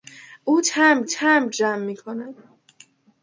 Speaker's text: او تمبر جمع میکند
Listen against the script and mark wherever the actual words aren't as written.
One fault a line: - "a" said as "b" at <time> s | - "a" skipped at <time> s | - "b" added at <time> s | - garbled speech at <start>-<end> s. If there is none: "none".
- "تمبر" added at 1.0 s